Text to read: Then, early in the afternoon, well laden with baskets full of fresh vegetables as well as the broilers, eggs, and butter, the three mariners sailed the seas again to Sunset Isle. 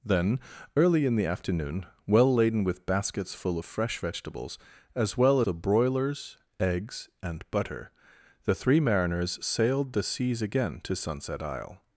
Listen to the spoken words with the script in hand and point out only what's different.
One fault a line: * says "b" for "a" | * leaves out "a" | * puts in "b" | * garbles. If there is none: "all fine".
* leaves out "as"